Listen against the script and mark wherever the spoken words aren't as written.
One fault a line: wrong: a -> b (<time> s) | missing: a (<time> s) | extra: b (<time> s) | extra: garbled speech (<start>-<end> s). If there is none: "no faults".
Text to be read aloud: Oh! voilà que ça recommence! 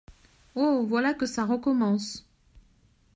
no faults